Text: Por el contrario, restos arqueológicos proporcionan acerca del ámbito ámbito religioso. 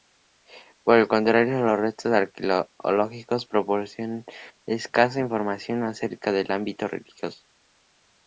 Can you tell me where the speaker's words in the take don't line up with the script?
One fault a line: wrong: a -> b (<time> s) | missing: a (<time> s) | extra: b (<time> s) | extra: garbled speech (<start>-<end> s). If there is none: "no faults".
extra: los (1.6 s)
extra: escasa información (4.7 s)
missing: ámbito (6.9 s)